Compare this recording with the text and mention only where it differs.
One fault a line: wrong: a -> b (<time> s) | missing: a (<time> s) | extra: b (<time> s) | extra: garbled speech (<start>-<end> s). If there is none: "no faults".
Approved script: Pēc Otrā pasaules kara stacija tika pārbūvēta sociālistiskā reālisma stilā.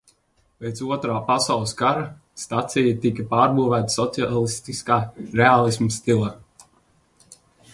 no faults